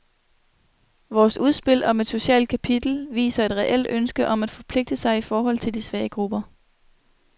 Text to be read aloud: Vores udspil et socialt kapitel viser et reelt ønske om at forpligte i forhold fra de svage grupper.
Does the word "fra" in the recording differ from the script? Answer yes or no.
yes